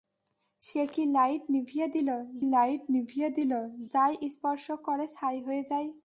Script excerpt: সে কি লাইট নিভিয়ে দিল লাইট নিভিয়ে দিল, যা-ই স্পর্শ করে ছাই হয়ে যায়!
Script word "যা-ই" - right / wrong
right